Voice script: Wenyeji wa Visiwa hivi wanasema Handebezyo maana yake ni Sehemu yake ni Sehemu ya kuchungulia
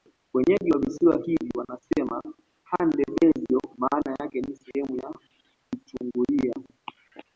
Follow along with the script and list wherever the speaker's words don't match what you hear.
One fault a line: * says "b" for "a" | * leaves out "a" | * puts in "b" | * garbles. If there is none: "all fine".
* leaves out "yake ni Sehemu"